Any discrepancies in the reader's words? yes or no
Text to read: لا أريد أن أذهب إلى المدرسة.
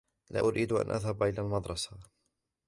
no